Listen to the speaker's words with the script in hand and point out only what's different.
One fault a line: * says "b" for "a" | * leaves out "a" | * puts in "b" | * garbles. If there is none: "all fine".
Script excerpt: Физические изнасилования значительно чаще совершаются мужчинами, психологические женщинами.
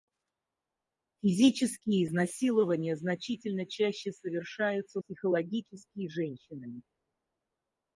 * leaves out "мужчинами"